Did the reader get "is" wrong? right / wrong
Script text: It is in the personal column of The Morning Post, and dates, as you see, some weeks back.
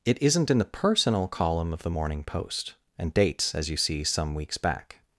wrong